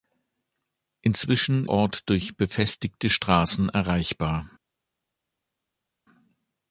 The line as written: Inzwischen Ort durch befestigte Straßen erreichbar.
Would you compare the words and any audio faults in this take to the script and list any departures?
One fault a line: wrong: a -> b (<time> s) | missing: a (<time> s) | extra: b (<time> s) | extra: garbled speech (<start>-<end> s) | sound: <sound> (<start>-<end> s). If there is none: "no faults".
no faults